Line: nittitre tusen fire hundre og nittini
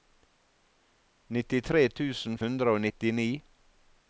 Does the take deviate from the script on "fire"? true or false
true